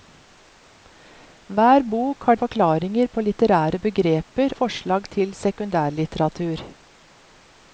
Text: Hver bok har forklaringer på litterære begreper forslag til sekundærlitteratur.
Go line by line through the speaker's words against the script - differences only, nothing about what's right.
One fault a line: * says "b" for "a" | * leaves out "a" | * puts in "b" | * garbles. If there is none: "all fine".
all fine